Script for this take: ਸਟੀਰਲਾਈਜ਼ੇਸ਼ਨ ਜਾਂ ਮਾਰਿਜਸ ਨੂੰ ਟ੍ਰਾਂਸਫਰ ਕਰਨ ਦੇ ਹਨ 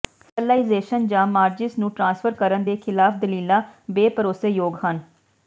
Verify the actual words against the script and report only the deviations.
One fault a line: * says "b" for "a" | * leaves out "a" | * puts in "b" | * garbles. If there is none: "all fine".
* puts in "ਖਿਲਾਫ ਦਲੀਲਾਂ ਬੇਭਰੋਸੇਯੋਗ"